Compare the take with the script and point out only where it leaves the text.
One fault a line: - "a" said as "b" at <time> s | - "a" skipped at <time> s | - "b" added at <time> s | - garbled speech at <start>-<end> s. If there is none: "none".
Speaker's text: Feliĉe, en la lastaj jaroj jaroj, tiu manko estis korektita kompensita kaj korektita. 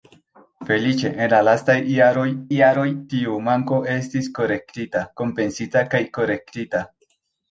none